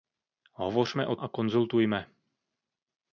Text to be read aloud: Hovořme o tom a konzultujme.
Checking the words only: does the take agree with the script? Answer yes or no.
no